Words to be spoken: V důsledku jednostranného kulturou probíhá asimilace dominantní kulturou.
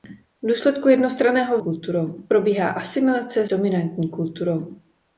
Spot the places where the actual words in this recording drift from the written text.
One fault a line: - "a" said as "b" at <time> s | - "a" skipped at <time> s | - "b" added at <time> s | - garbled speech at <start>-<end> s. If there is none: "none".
none